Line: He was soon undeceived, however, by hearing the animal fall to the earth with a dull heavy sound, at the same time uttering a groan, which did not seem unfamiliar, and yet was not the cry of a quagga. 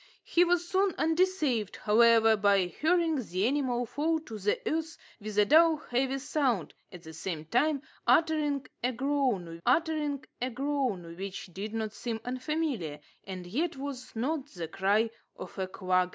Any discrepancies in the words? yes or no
yes